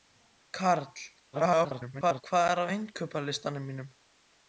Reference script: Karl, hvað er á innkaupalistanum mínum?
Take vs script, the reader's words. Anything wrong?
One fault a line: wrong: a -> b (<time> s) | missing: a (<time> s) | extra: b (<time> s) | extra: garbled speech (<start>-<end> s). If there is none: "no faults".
extra: garbled speech (1.3-2.2 s)